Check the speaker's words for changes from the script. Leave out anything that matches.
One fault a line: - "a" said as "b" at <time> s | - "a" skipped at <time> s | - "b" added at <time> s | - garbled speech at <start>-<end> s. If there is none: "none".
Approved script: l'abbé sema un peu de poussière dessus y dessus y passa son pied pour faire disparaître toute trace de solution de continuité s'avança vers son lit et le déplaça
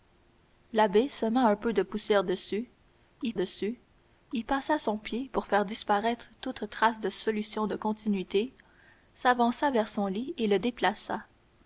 none